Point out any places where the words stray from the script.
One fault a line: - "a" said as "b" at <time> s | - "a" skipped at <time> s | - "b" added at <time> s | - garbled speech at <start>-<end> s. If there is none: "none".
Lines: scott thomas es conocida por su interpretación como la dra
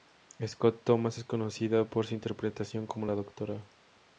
none